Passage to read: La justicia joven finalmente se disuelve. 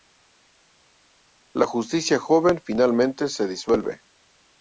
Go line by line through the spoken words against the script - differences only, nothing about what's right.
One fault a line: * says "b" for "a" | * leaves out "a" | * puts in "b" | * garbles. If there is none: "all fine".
all fine